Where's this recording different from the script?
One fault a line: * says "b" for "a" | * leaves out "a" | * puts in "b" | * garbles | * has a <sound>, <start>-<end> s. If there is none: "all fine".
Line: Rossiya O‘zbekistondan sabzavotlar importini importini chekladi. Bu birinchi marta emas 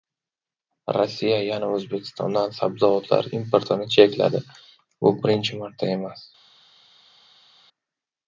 * puts in "yana"
* leaves out "importini"